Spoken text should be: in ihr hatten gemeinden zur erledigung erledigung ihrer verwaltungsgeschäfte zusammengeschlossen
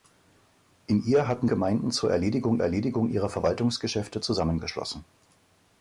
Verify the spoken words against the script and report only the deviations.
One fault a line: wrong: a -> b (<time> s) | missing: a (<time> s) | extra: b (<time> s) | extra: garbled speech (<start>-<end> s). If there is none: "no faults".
no faults